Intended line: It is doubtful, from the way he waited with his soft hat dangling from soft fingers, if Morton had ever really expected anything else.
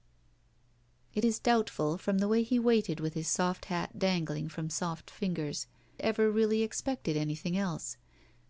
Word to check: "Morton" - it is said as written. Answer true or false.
false